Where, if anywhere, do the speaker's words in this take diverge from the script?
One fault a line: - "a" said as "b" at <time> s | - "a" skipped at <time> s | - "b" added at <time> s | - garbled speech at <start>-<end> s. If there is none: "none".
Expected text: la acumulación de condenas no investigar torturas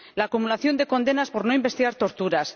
- "por" added at 1.3 s